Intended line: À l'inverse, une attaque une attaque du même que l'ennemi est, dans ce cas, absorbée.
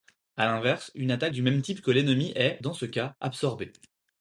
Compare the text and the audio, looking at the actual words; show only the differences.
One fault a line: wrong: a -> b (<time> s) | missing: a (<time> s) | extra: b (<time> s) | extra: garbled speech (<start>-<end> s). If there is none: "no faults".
missing: une attaque (1.3 s)
extra: type (1.6 s)